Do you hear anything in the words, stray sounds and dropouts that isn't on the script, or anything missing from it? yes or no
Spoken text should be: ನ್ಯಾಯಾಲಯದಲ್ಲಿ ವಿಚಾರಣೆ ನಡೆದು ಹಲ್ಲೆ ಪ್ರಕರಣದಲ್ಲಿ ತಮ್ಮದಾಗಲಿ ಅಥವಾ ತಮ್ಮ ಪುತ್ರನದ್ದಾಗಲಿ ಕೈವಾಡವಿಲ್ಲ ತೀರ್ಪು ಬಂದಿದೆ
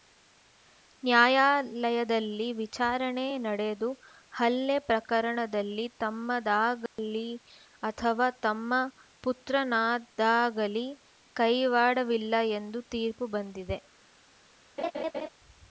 yes